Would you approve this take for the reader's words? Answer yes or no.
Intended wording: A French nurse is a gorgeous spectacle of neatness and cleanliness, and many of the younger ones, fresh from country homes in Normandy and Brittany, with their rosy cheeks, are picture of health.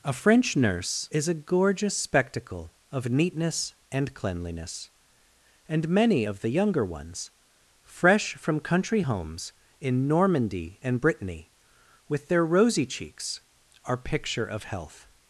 yes